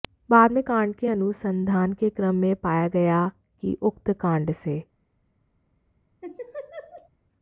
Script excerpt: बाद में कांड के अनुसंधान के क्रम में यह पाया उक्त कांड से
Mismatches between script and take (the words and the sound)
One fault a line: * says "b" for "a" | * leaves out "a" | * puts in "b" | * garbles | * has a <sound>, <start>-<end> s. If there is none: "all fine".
* puts in "गया कि"
* has a laugh, 6.2-7.1 s